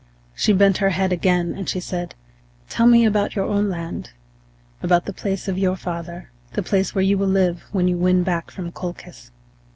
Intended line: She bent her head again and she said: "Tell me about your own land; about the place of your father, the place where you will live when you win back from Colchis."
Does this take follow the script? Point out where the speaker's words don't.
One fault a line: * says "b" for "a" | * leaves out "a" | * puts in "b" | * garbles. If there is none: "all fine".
all fine